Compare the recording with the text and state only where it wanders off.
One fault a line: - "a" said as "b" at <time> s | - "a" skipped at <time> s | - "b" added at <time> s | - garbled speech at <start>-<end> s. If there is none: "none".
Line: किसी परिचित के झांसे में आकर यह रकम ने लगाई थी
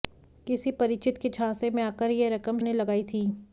none